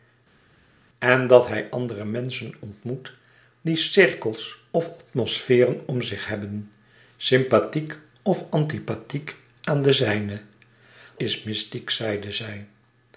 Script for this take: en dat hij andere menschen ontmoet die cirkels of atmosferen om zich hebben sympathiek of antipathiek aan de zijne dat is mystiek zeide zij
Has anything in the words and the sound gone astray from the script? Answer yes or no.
yes